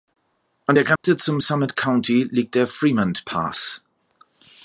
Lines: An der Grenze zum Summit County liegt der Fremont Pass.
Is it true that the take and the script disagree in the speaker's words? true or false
false